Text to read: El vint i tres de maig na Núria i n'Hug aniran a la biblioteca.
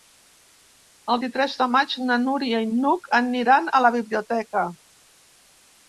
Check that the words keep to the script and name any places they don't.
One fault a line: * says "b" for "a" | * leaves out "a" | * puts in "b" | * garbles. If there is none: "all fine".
* leaves out "vint"